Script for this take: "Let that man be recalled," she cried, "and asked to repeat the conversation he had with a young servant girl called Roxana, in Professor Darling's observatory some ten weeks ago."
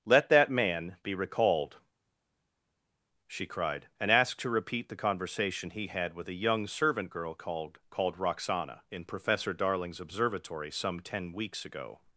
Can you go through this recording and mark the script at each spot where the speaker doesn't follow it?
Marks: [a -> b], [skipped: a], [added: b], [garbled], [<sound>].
"Let that man be recalled," she cried, "and asked to repeat the conversation he had with a young servant girl called [added: called] Roxana, in Professor Darling's observatory some ten weeks ago."